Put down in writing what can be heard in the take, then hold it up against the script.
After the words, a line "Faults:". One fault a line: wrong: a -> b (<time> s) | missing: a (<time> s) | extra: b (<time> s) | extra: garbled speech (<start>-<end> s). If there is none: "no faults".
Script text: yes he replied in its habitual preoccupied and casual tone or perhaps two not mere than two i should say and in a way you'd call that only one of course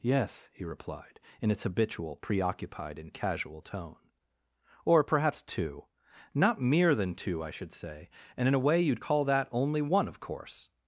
yes he replied in its habitual preoccupied and casual tone or perhaps two not mere than two i should say and in a way you'd call that only one of course
Faults:
no faults